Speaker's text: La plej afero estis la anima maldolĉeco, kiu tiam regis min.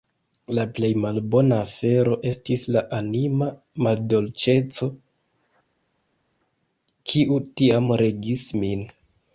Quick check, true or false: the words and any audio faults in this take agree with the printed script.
false